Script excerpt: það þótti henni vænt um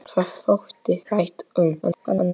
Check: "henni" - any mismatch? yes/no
yes